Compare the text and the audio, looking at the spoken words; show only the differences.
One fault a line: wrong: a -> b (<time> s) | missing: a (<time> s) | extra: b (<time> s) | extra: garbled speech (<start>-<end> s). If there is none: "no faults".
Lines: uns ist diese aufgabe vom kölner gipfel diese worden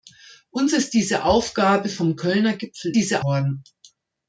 no faults